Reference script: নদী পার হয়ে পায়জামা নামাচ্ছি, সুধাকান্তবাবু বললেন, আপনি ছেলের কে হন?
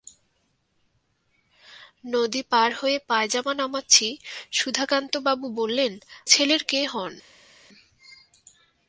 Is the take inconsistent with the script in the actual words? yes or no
yes